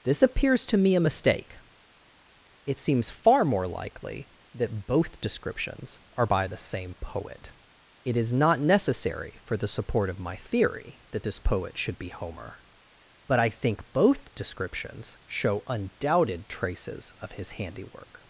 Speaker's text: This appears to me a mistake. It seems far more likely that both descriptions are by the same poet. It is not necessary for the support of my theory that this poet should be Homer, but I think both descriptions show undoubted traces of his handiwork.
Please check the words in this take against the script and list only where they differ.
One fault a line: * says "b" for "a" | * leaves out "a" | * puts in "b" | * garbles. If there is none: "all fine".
all fine